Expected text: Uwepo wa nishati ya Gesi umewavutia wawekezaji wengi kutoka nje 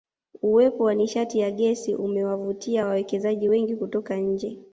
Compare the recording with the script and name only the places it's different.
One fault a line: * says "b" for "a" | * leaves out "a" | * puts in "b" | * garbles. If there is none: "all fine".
all fine